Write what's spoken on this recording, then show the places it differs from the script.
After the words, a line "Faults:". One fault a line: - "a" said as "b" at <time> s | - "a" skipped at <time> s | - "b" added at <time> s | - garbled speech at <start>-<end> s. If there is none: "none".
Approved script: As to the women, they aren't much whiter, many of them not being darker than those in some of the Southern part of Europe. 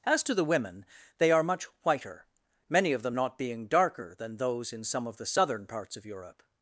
As to the women, they are much whiter, many of them not being darker than those in some of the Southern parts of Europe.
Faults:
- "aren't" said as "are" at 1.3 s
- "part" said as "parts" at 5.7 s